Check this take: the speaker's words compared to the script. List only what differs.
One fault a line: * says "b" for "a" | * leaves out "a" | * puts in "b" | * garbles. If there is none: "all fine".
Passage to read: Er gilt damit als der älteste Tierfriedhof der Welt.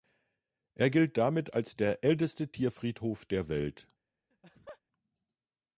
all fine